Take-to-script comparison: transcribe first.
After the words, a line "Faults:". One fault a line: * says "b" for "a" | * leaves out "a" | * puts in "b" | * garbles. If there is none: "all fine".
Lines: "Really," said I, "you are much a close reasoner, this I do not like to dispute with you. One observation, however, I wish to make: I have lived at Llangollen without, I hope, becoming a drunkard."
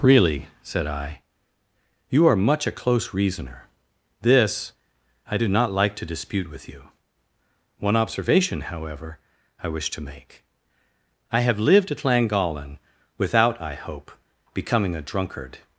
"Really," said I, "you are much a close reasoner, this I do not like to dispute with you. One observation, however, I wish to make: I have lived at Llangollen without, I hope, becoming a drunkard."
Faults:
all fine